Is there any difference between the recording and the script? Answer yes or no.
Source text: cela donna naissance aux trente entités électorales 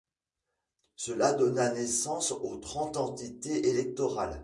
no